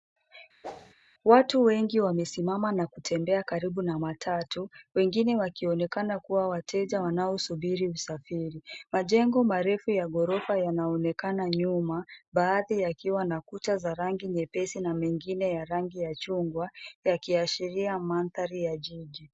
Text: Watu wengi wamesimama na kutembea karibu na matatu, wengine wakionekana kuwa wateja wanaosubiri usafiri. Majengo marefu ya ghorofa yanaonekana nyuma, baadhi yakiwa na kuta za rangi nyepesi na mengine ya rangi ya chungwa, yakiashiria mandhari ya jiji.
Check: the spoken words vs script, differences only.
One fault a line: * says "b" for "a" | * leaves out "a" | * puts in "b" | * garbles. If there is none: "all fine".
all fine